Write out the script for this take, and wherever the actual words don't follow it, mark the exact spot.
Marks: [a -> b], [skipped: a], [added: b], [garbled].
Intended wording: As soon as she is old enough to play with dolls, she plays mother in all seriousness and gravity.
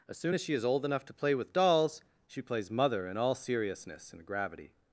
As soon as she is old enough to play with dolls, she plays mother in all seriousness and gravity.